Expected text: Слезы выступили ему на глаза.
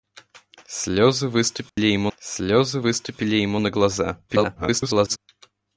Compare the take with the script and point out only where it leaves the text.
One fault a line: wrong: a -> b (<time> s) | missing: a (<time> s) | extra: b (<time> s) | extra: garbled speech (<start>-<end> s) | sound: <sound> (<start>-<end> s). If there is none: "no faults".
sound: dropout (1.7-1.8 s)
extra: слезы выступили ему (2.2 s)
extra: garbled speech (4.3-5.2 s)